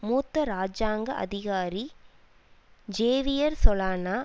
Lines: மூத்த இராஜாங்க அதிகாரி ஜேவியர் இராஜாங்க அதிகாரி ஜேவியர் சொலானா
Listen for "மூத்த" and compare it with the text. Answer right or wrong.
right